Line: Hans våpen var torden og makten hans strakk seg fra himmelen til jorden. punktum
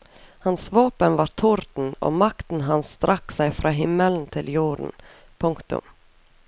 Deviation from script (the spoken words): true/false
false